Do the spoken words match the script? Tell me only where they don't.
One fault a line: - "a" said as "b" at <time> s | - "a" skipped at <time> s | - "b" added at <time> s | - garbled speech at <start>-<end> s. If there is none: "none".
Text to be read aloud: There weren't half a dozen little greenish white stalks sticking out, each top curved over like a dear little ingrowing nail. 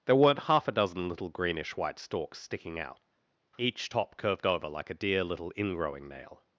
none